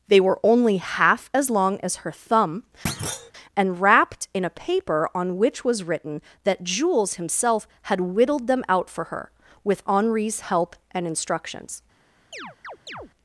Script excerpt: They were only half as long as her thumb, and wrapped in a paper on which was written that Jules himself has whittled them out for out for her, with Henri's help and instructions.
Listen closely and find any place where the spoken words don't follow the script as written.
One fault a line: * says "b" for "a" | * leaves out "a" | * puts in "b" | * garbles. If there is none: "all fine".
* says "had" for "has"
* leaves out "out for"